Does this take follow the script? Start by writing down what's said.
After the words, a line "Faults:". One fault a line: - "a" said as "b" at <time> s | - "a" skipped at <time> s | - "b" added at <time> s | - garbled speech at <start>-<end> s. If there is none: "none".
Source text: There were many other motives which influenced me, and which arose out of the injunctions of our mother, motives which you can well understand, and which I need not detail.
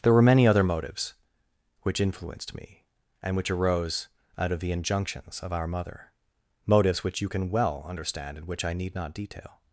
There were many other motives which influenced me, and which arose out of the injunctions of our mother, motives which you can well understand, and which I need not detail.
Faults:
none